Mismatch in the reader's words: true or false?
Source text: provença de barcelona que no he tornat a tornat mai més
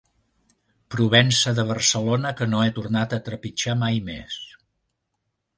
true